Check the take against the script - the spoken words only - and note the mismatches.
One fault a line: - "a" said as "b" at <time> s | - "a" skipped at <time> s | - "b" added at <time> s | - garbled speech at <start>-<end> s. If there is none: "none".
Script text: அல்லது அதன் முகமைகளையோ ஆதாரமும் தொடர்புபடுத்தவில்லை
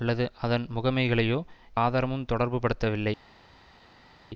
none